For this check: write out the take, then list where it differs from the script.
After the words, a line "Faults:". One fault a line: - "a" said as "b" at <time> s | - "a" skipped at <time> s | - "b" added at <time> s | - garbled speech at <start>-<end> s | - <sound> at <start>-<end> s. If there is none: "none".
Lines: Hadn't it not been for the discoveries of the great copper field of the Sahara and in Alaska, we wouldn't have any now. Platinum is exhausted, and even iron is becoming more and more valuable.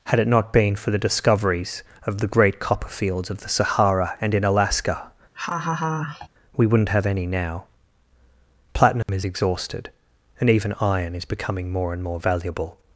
Had it not been for the discoveries of the great copper fields of the Sahara and in Alaska, we wouldn't have any now. Platinum is exhausted, and even iron is becoming more and more valuable.
Faults:
- "Hadn't" said as "Had" at 0.1 s
- "field" said as "fields" at 2.9 s
- laugh at 5.3-6.3 s
- dropout at 9.0-9.1 s